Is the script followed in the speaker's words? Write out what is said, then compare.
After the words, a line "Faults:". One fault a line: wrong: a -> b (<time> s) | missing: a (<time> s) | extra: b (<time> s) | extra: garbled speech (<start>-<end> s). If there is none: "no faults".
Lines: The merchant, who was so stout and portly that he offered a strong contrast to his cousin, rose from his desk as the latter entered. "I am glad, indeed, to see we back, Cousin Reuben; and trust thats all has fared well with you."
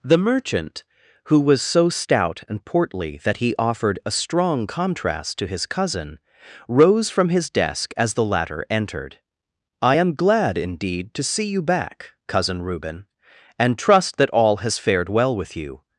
The merchant, who was so stout and portly that he offered a strong contrast to his cousin, rose from his desk as the latter entered. "I am glad, indeed, to see you back, Cousin Reuben; and trust that all has fared well with you."
Faults:
wrong: we -> you (11.5 s)
wrong: thats -> that (14.2 s)